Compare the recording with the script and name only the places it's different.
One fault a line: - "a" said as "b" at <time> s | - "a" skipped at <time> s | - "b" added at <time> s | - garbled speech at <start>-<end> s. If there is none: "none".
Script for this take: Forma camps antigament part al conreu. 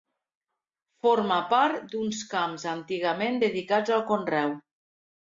- "part d'uns" added at 1.5 s
- "part" said as "dedicats" at 3.4 s